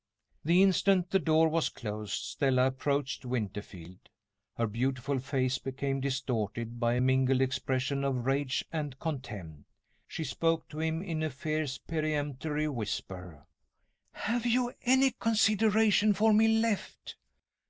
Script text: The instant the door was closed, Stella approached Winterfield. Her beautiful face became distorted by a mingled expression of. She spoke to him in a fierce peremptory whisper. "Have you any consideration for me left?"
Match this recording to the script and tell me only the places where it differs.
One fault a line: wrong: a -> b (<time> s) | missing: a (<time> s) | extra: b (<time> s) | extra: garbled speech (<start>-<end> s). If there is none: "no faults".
extra: rage and contempt (8.2 s)